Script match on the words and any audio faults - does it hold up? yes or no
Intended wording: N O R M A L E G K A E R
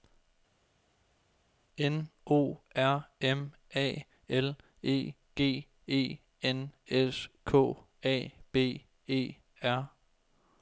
no